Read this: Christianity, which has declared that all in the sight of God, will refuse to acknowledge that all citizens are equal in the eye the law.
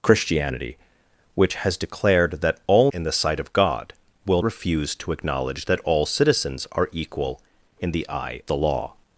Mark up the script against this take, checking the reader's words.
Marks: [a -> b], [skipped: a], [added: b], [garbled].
Christianity, which has declared that all in the sight of God, will refuse to acknowledge that all citizens are equal in the eye the law.